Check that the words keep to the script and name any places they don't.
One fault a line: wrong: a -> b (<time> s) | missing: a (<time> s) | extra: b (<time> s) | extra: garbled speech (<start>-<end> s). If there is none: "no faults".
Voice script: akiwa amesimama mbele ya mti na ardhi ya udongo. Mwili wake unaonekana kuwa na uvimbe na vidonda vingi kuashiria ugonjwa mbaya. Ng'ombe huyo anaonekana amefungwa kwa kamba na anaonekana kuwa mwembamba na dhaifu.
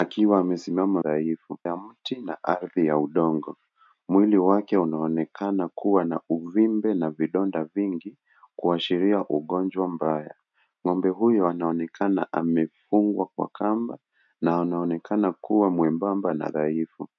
wrong: mbele -> dhaifu (1.0 s)